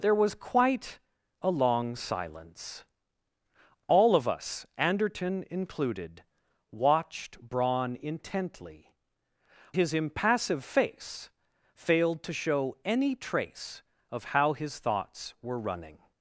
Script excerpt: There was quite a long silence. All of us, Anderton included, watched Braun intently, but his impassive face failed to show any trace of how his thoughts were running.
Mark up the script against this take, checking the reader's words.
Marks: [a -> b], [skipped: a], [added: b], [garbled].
There was quite a long silence. All of us, Anderton included, watched Braun intently, [skipped: but] his impassive face failed to show any trace of how his thoughts were running.